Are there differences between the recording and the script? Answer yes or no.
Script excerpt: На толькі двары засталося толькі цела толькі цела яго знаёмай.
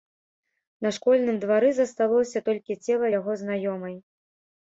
yes